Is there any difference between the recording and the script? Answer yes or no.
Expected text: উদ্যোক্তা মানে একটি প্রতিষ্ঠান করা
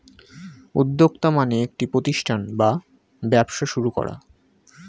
yes